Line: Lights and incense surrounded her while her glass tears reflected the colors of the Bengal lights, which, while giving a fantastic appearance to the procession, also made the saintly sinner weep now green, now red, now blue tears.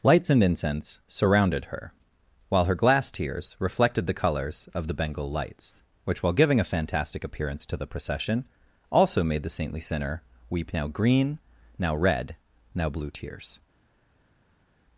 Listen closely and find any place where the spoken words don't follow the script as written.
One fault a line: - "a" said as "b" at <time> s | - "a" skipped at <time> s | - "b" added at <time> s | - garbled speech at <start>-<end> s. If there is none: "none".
none